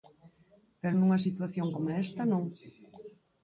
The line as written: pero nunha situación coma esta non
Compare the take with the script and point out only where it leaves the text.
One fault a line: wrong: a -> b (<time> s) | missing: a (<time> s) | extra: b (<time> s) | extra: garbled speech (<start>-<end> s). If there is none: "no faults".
no faults